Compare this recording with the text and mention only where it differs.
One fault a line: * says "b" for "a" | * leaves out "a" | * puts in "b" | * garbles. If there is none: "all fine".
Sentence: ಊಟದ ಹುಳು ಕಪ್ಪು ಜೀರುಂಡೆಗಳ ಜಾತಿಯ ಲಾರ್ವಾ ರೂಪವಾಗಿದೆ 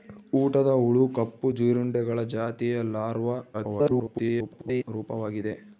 * garbles